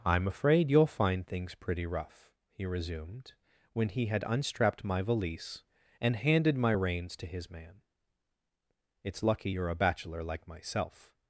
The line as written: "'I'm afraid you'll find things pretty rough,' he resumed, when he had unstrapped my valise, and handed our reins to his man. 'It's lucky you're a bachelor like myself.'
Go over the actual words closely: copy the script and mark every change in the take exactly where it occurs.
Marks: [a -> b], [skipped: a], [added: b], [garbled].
"'I'm afraid you'll find things pretty rough,' he resumed, when he had unstrapped my valise, and handed [our -> my] reins to his man. 'It's lucky you're a bachelor like myself.'